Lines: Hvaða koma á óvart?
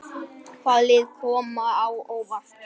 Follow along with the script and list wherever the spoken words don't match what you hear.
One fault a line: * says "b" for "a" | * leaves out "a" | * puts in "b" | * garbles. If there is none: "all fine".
* puts in "lið"